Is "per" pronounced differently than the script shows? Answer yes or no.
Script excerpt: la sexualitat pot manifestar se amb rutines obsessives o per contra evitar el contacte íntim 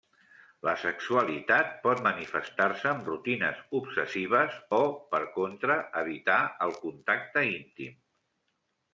no